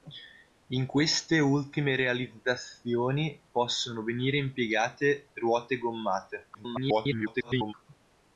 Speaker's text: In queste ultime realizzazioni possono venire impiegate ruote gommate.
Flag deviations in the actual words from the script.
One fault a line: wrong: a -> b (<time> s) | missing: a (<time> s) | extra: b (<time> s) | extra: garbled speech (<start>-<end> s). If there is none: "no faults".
extra: garbled speech (6.5-7.7 s)